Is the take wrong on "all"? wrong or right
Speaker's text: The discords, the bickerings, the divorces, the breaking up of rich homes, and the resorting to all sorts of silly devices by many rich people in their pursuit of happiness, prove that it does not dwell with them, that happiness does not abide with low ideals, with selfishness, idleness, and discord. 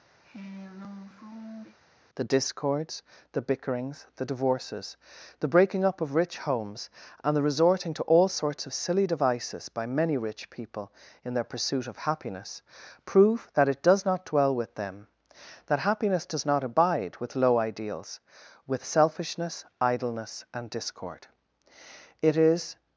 right